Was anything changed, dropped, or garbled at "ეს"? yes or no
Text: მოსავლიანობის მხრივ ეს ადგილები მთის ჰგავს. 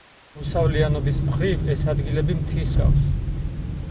no